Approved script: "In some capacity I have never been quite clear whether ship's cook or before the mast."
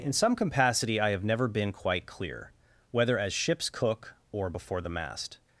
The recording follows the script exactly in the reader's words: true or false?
false